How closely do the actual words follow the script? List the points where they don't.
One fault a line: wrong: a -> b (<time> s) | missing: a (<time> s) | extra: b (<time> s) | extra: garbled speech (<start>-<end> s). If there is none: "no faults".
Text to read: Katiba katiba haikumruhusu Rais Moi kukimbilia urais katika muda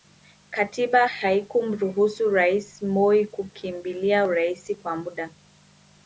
missing: katiba (1.1 s)
wrong: katika -> kwa (4.8 s)